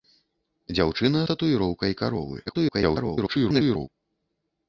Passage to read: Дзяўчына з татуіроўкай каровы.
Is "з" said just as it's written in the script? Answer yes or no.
no